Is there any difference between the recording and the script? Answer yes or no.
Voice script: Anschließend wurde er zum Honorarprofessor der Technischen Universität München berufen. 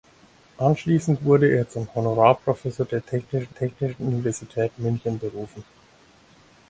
yes